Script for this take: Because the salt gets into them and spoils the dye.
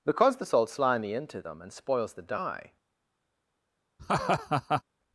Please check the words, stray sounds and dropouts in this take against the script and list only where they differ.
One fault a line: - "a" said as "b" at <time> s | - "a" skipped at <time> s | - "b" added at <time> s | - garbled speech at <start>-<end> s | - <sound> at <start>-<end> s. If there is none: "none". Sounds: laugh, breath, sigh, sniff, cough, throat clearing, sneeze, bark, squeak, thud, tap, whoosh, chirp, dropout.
- "gets" said as "slimy" at 0.7 s
- laugh at 4.0-4.8 s